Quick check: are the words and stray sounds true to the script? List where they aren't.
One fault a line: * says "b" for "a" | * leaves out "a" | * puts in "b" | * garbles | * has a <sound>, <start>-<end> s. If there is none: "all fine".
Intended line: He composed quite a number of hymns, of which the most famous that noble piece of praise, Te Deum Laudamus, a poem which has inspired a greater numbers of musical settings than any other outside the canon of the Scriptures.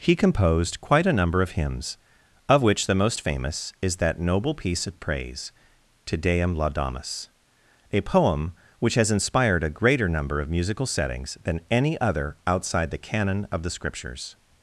* puts in "is"
* says "number" for "numbers"